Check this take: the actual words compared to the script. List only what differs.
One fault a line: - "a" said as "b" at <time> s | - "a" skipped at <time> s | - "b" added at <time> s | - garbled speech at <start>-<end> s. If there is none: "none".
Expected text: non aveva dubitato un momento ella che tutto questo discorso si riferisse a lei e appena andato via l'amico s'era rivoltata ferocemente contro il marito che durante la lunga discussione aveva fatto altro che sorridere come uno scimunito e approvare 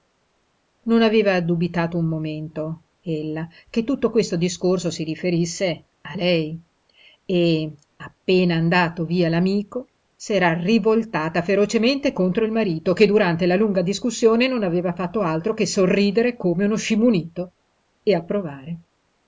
- "non" added at 14.5 s